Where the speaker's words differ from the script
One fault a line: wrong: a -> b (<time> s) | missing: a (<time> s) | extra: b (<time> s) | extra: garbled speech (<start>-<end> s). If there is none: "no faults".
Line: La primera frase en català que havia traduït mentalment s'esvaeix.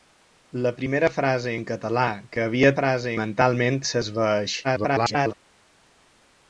wrong: traduït -> frase (2.8 s)
extra: garbled speech (4.6-5.3 s)